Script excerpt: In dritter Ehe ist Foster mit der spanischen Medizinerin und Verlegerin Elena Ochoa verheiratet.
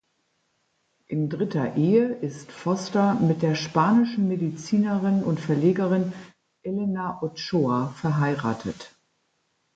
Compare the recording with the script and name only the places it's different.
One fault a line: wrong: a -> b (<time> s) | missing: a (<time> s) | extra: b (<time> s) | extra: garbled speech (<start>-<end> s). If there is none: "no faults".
no faults